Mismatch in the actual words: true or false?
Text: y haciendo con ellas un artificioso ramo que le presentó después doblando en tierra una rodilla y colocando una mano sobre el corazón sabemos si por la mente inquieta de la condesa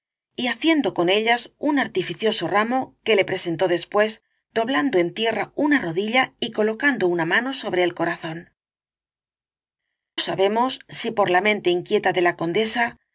false